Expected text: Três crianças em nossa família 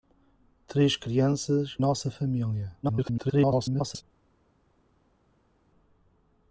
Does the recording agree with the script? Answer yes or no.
no